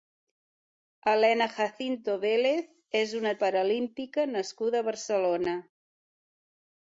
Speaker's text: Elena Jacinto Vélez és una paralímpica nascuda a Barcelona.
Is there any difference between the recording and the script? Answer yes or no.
no